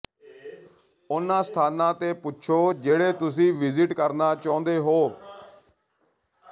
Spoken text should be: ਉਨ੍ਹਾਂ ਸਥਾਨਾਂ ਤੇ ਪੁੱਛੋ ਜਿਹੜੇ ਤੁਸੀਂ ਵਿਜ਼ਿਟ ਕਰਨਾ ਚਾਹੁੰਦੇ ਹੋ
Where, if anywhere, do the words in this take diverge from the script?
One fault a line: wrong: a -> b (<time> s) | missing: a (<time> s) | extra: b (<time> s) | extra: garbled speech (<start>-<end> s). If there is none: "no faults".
no faults